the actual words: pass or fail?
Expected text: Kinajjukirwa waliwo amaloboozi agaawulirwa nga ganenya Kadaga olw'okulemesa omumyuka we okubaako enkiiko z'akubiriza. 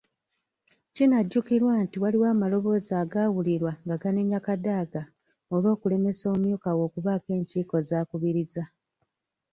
fail